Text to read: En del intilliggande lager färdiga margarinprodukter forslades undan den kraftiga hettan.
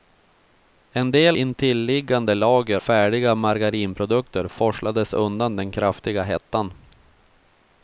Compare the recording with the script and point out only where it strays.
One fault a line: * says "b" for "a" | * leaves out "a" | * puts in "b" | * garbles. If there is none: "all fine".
all fine